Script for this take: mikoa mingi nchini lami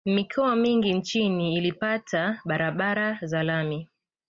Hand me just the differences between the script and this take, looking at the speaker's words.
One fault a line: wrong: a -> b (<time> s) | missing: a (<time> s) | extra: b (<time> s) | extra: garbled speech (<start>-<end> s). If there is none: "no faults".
extra: ilipata barabara za (1.6 s)